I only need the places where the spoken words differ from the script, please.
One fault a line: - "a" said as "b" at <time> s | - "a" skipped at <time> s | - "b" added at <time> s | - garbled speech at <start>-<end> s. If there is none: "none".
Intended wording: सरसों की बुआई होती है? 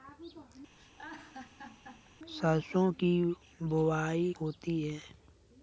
none